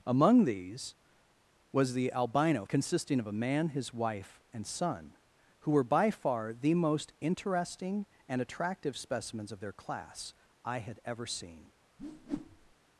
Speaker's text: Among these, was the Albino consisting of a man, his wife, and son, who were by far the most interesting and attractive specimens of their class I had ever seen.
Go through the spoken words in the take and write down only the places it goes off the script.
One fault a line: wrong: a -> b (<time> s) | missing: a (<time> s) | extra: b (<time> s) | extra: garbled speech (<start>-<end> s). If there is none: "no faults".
no faults